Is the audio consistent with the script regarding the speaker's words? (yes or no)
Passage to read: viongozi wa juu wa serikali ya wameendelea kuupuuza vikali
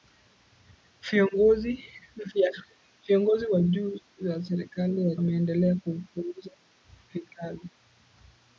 yes